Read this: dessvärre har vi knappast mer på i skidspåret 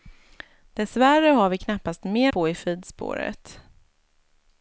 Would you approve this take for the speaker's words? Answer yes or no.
yes